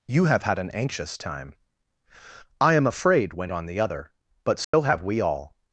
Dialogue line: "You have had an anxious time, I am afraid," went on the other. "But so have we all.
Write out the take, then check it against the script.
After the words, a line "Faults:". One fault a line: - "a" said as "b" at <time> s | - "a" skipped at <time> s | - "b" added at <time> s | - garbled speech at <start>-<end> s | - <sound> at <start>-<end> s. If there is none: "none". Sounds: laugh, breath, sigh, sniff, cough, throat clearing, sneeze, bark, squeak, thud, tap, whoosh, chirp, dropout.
"You have had an anxious time, I am afraid," went on the other. "But so have we all.
Faults:
- dropout at 4.6-4.7 s